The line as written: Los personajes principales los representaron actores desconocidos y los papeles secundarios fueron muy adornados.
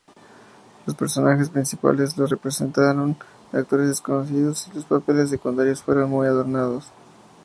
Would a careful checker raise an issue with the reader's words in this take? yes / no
no